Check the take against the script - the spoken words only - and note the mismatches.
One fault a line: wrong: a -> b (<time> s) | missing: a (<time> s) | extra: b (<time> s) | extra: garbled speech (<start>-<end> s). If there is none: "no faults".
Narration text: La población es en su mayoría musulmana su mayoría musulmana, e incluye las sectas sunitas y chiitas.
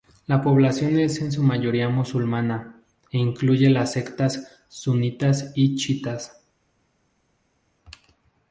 missing: su mayoría musulmana (2.8 s)